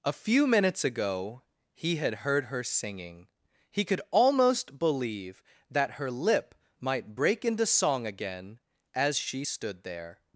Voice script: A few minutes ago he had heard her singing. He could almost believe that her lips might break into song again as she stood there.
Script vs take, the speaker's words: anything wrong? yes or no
yes